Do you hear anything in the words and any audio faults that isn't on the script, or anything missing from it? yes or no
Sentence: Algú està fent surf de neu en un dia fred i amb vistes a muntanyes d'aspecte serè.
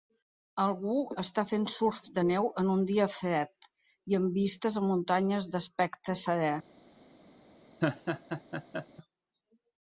yes